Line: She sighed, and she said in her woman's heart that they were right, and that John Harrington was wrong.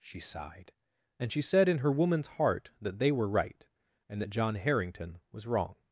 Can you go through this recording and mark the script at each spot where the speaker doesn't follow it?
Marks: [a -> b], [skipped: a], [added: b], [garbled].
She sighed, and she said in her woman's heart that they were right, and that John Harrington was wrong.